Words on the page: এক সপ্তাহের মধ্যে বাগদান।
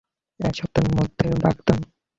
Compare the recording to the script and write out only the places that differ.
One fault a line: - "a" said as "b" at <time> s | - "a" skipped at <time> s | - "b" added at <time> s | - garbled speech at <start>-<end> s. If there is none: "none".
none